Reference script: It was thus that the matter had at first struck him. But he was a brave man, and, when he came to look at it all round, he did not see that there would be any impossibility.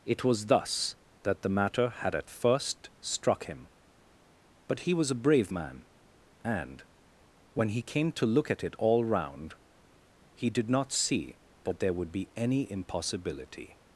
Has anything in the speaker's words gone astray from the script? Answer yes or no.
no